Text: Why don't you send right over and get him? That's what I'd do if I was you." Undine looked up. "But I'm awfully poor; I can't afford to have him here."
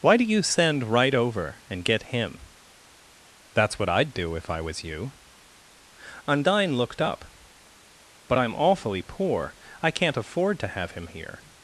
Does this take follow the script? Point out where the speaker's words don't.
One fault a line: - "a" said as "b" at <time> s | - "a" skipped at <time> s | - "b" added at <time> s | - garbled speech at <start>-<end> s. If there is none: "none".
- "don't" said as "do" at 0.2 s